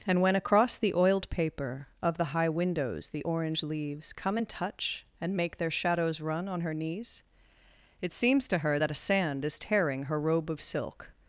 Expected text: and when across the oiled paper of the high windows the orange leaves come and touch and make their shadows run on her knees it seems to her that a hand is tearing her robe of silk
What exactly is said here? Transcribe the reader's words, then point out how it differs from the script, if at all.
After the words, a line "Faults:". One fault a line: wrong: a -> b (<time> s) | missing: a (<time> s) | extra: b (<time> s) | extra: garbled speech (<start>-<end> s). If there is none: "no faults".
and when across the oiled paper of the high windows the orange leaves come and touch and make their shadows run on her knees it seems to her that a sand is tearing her robe of silk
Faults:
wrong: hand -> sand (8.9 s)